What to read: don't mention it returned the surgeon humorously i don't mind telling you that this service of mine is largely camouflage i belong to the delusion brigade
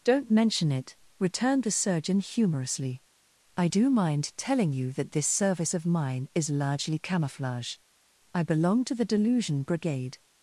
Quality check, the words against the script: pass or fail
fail